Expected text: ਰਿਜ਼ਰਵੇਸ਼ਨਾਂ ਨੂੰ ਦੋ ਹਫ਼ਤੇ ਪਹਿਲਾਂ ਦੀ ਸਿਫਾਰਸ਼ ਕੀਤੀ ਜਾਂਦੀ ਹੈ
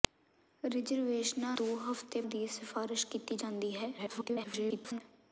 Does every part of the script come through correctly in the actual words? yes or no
no